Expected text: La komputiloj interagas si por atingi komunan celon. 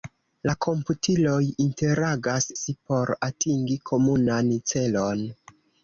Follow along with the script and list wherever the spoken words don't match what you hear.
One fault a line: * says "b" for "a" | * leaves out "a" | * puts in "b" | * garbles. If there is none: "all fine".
all fine